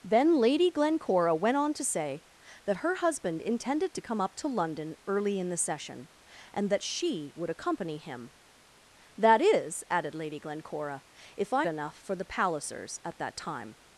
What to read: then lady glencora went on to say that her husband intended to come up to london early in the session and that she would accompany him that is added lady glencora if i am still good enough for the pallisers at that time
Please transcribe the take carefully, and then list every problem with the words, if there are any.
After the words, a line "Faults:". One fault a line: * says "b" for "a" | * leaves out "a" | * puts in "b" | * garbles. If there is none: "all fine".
then lady glencora went on to say that her husband intended to come up to london early in the session and that she would accompany him that is added lady glencora if i enough for the pallisers at that time
Faults:
* leaves out "am still good"